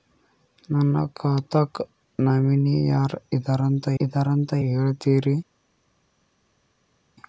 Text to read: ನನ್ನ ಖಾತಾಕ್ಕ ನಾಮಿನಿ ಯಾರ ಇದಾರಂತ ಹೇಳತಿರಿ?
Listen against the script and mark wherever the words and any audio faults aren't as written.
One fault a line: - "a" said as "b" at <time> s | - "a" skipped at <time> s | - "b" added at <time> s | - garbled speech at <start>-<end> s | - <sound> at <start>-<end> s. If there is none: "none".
- "ಇದಾರಂತ" added at 4.0 s